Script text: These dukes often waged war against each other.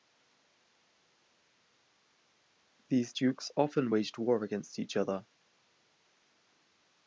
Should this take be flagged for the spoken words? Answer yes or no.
no